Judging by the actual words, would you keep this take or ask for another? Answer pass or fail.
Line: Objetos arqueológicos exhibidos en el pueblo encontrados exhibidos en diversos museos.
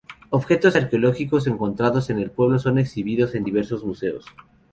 fail